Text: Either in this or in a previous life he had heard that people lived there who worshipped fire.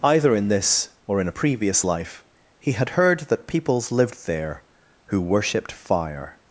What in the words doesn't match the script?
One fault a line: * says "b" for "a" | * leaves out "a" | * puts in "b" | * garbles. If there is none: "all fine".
* says "peoples" for "people"